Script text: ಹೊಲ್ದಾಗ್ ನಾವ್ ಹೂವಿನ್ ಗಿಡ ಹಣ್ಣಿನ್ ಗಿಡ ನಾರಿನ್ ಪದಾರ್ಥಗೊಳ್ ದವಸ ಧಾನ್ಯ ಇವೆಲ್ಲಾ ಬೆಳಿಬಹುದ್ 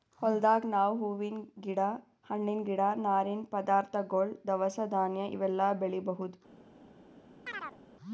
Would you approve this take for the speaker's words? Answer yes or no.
yes